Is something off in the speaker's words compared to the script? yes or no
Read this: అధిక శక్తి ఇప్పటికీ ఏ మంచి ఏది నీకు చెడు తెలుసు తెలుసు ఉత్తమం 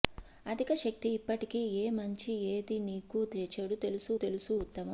no